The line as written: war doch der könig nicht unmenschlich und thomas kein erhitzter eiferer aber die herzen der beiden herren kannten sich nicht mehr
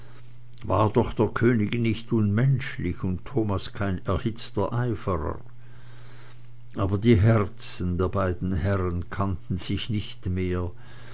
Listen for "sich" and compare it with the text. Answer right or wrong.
right